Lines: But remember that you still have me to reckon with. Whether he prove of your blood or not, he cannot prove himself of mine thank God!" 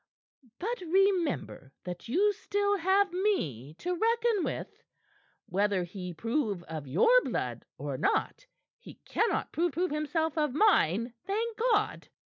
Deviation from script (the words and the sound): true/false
true